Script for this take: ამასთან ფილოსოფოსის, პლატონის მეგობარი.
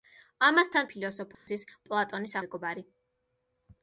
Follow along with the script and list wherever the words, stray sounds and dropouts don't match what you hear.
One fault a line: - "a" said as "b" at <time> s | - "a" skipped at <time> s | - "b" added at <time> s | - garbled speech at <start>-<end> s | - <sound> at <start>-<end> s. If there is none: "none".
- dropout at 1.3-1.5 s